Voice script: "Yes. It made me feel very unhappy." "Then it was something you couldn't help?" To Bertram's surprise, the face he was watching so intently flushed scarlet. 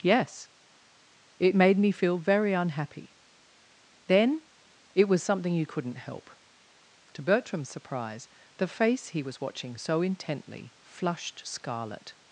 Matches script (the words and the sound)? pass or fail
pass